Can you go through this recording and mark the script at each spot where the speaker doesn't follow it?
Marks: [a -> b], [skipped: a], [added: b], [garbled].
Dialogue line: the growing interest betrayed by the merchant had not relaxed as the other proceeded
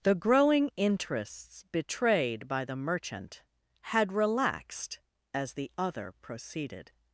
the growing [interest -> interests] betrayed by the merchant had [skipped: not] relaxed as the other proceeded